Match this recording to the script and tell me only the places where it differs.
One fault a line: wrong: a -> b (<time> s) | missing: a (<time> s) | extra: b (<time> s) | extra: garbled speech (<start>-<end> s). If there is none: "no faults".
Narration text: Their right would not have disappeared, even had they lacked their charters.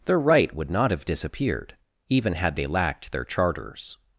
no faults